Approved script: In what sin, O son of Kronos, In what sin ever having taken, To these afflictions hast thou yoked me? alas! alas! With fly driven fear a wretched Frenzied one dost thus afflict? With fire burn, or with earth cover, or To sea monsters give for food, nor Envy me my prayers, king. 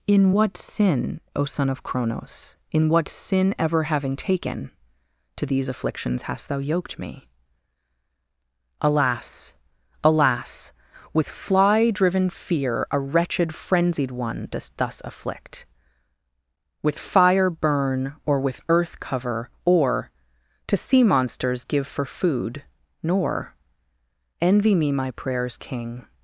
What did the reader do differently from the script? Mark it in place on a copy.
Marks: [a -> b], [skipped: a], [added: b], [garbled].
In what sin, O son of Kronos, In what sin ever having taken, To these afflictions hast thou yoked me? alas! alas! With fly driven fear a wretched Frenzied one dost thus afflict? With fire burn, or with earth cover, or To sea monsters give for food, nor Envy me my prayers, king.